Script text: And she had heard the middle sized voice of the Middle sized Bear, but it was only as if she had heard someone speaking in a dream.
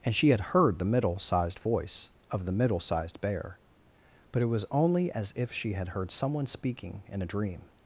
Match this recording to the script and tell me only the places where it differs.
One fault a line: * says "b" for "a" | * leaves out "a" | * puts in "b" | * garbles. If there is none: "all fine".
all fine